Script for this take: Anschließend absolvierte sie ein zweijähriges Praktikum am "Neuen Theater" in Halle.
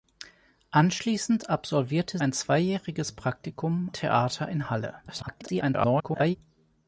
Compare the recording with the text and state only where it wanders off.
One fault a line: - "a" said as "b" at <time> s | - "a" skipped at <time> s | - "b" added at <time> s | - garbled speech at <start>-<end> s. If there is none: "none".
- "sie" skipped at 2.2 s
- "am Neuen" skipped at 3.9 s
- garbled speech at 5.1-6.4 s